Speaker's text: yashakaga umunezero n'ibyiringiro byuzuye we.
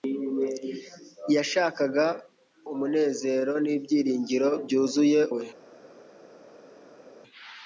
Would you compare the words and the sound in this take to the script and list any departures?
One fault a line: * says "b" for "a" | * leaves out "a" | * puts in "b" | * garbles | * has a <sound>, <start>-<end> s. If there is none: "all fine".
all fine